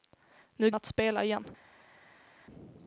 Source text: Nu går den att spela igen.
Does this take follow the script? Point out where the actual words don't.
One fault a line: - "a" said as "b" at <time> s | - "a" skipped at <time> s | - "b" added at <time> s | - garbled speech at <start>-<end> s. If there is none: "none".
- "går den" skipped at 0.7 s